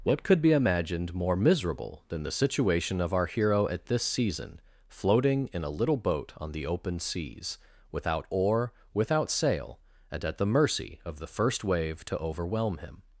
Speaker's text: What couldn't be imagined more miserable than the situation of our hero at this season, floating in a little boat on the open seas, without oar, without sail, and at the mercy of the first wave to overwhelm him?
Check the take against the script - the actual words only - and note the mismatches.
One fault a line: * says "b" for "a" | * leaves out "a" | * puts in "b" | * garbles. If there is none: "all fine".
* says "could" for "couldn't"